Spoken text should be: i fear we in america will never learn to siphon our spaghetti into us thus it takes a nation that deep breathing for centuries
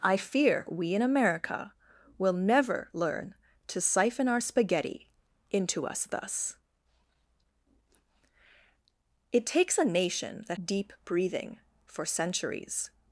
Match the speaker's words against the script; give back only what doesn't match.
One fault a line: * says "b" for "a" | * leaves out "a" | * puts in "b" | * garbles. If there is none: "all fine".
all fine